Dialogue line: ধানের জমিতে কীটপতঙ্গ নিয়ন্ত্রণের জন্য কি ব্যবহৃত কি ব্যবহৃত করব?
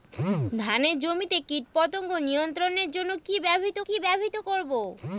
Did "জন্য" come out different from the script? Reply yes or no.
no